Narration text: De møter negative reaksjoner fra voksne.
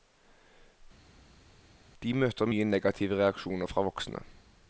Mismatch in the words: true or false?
true